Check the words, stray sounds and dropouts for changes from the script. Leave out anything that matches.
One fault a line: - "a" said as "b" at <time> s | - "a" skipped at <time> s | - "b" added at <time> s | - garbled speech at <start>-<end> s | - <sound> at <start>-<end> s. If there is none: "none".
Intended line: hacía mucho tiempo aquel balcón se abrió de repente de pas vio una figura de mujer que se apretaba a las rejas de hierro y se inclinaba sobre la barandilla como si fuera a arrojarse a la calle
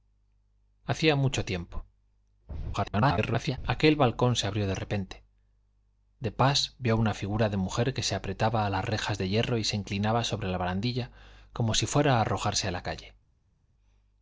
- garbled speech at 2.7-3.6 s